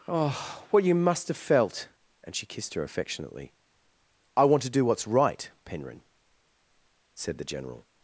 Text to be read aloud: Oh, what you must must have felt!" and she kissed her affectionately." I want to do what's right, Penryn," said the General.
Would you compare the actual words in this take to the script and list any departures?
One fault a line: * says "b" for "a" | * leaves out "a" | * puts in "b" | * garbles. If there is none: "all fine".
* leaves out "must"